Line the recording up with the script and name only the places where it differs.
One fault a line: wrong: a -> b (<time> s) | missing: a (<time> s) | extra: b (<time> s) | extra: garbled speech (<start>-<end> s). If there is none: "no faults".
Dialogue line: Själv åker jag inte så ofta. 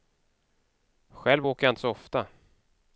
no faults